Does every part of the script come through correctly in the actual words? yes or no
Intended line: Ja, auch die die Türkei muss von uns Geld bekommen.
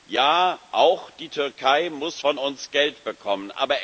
no